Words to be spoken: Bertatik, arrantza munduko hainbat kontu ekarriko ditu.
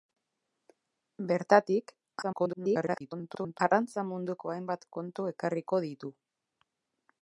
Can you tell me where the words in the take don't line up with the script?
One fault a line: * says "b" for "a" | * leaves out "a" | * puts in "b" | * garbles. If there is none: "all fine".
* garbles